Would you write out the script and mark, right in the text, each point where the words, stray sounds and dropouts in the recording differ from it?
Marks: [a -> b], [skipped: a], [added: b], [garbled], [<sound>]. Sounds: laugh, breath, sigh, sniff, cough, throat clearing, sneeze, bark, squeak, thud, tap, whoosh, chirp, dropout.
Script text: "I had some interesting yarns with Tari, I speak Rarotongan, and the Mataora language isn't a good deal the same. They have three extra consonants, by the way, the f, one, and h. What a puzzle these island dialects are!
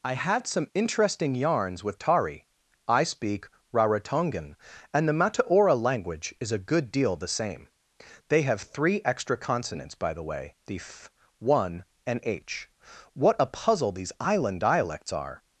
"I had some interesting yarns with Tari, I speak Rarotongan, and the Mataora language [isn't -> is] a good deal the same. They have three extra consonants, by the way, the f, one, and h. What a puzzle these island dialects are!